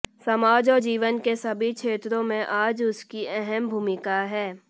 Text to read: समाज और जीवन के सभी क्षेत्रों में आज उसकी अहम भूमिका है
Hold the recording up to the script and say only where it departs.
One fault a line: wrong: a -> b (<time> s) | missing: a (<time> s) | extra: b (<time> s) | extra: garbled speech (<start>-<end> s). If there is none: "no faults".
no faults